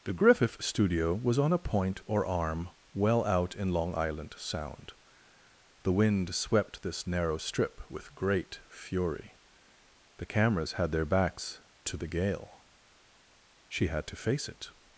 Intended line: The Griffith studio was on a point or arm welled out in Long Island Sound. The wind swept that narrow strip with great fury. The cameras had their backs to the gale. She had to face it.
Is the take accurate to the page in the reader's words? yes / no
no